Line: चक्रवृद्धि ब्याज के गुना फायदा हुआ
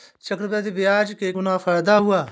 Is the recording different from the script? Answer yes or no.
no